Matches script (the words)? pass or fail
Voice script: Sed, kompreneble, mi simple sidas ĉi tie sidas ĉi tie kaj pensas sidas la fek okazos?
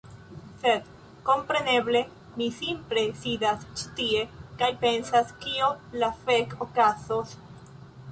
fail